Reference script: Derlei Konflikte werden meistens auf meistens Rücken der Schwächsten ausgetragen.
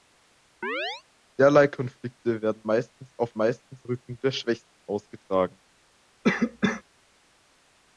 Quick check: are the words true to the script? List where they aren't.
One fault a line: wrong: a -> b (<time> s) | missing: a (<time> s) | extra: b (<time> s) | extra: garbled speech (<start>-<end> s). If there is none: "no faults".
no faults